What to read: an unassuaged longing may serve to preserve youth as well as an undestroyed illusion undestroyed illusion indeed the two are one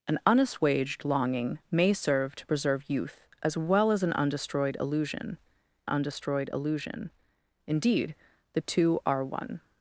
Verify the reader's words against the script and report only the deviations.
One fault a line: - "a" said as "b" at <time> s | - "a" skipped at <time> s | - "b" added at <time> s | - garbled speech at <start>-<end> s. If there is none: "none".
none